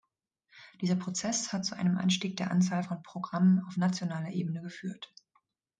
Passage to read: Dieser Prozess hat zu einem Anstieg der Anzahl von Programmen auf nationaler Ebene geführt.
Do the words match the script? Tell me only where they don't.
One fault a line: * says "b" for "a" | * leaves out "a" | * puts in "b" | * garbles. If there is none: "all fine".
all fine